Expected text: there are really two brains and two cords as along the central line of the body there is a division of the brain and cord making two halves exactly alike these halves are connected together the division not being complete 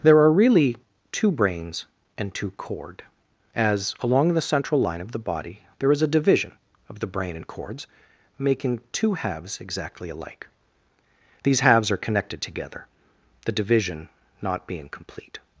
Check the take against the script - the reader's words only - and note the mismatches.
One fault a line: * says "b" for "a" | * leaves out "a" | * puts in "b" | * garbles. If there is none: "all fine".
* says "cord" for "cords"
* says "cords" for "cord"